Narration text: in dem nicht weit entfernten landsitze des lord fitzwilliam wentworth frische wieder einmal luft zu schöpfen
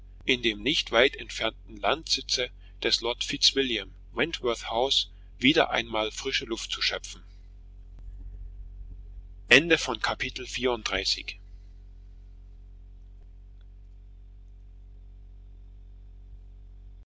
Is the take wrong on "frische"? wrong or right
wrong